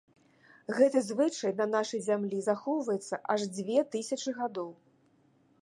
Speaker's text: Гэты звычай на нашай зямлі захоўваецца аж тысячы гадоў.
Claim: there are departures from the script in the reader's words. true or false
true